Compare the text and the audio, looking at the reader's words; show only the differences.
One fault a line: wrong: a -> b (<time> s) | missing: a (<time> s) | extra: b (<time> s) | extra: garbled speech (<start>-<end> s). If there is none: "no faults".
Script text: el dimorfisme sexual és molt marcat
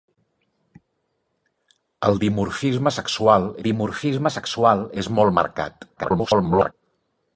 extra: dimorfisme sexual (3.6 s)
extra: garbled speech (6.0-6.7 s)